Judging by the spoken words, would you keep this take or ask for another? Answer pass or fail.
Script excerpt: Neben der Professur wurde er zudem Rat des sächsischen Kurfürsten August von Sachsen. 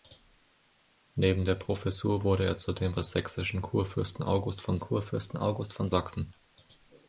fail